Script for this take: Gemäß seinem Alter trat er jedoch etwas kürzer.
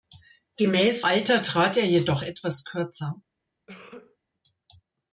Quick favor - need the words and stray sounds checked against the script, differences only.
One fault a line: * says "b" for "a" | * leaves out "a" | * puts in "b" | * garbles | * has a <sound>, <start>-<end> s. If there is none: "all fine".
* leaves out "seinem"
* has a cough, 3.7-4.2 s